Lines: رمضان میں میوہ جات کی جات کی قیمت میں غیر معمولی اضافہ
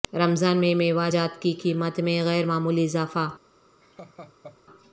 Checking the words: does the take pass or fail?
fail